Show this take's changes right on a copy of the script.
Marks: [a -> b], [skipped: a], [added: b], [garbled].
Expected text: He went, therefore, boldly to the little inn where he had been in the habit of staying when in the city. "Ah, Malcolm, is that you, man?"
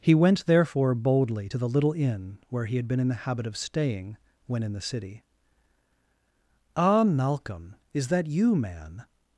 He went, therefore, boldly to the little inn where he had been in the habit of staying when in the city. "Ah, Malcolm, is that you, man?"